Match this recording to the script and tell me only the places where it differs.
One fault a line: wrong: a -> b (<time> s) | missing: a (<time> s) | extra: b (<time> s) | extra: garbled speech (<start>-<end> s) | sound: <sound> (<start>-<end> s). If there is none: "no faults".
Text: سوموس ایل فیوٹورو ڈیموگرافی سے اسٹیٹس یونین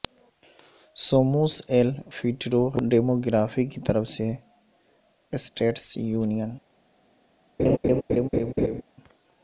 extra: کی طرف (3.7 s)
sound: laugh (7.6-8.8 s)